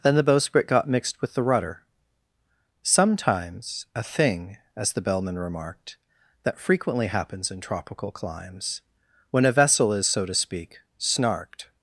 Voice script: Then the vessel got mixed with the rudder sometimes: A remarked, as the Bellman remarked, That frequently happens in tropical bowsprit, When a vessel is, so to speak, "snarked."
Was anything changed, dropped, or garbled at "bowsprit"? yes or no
yes